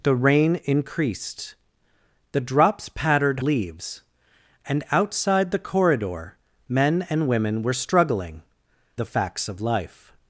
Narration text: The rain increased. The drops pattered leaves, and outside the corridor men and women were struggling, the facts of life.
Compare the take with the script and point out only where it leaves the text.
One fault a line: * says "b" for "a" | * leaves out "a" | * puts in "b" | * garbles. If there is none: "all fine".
all fine